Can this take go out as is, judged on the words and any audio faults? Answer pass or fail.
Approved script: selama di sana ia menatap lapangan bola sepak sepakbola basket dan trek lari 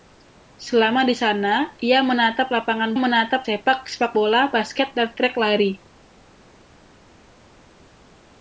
fail